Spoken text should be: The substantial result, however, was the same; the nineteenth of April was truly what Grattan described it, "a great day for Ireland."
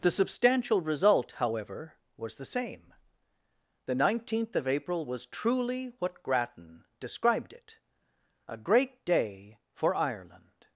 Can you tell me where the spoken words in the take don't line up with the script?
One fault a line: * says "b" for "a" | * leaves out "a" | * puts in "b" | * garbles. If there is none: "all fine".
all fine